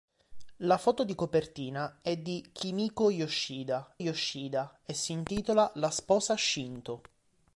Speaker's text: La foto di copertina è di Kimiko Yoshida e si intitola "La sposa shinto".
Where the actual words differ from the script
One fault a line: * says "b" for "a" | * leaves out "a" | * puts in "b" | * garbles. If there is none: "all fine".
* puts in "Yoshida"